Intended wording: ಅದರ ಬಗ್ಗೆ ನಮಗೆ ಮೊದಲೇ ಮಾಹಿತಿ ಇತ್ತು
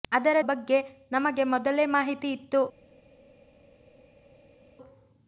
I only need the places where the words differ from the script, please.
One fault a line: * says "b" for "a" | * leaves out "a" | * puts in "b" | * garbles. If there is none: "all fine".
all fine